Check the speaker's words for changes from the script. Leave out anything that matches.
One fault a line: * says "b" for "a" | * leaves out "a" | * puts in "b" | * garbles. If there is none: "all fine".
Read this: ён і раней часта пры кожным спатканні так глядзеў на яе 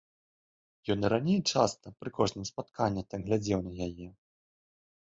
all fine